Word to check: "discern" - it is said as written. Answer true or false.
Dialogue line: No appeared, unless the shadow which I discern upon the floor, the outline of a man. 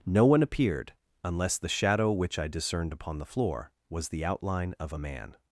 false